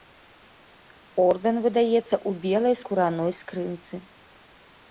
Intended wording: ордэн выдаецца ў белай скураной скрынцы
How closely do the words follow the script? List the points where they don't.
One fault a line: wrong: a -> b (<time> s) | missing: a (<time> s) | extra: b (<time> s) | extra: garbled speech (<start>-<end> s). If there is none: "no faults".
no faults